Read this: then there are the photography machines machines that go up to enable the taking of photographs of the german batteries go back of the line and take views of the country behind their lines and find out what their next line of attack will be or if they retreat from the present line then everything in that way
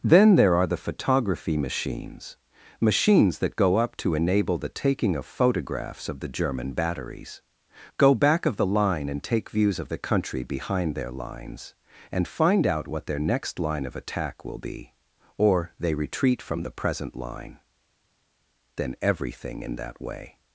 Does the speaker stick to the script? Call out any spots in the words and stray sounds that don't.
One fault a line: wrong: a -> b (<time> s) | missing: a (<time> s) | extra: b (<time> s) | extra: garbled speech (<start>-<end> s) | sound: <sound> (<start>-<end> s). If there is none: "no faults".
missing: if (15.7 s)